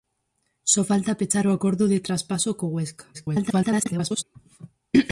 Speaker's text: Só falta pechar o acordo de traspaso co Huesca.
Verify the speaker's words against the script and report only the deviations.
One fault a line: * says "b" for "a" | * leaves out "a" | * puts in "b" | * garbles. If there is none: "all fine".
* garbles